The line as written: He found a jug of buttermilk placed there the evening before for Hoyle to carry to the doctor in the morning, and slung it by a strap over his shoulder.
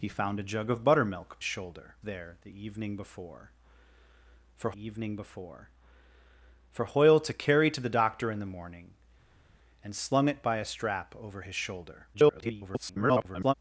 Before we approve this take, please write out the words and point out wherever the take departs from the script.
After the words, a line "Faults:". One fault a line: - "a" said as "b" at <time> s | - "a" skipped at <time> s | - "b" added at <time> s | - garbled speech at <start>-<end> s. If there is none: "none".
He found a jug of buttermilk shoulder there the evening before for evening before for Hoyle to carry to the doctor in the morning, and slung it by a strap over his shoulder. [garbled]
Faults:
- "placed" said as "shoulder" at 1.4 s
- "evening before for" added at 4.7 s
- garbled speech at 12.1-13.5 s